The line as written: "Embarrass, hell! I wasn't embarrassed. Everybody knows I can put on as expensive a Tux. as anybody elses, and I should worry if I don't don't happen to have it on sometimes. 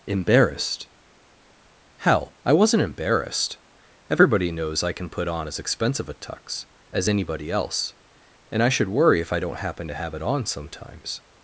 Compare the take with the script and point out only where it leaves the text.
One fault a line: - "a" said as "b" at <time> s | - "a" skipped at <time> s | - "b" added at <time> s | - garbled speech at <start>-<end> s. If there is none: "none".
- "Embarrass" said as "Embarrassed" at 0.1 s
- "elses" said as "else" at 7.5 s
- "don't" skipped at 9.6 s